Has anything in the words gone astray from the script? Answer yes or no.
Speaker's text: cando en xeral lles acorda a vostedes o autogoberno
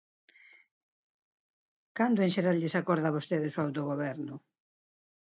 no